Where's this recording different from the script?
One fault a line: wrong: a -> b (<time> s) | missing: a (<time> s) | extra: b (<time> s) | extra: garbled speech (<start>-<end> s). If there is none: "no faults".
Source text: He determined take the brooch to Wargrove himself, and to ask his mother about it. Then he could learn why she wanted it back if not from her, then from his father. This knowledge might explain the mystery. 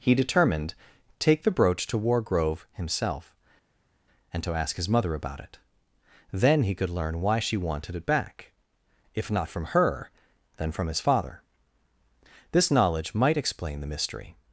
no faults